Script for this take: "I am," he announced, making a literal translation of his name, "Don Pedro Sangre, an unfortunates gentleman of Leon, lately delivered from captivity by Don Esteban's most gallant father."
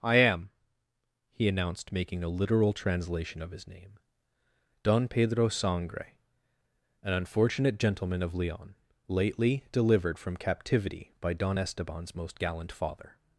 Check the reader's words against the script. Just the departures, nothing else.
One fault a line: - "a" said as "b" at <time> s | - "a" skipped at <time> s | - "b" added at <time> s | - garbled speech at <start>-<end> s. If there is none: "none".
- "unfortunates" said as "unfortunate" at 7.1 s